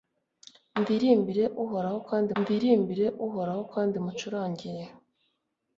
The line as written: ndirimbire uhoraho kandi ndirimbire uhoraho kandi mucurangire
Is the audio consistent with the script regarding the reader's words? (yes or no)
yes